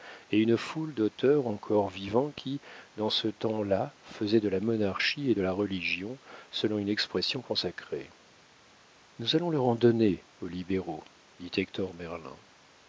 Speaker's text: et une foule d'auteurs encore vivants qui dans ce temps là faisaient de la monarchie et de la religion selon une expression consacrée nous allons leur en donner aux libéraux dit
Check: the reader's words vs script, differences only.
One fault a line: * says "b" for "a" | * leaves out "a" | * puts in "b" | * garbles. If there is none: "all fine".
all fine